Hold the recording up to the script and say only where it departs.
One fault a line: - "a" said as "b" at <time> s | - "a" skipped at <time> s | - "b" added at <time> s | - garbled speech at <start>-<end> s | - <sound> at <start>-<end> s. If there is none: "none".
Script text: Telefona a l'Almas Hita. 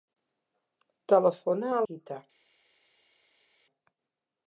- "l'Almas" skipped at 1.8 s